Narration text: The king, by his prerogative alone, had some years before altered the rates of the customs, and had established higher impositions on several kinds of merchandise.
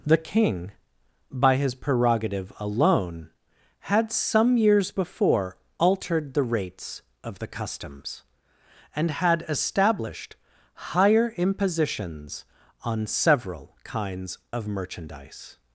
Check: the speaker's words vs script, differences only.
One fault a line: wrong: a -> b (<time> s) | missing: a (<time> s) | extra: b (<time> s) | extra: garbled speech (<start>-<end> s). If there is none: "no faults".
no faults